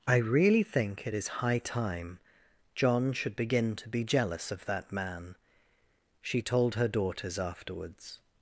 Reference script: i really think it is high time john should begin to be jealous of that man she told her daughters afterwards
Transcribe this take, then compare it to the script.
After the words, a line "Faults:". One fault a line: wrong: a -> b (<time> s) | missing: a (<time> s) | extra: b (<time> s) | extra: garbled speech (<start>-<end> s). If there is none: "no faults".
i really think it is high time john should begin to be jealous of that man she told her daughters afterwards
Faults:
no faults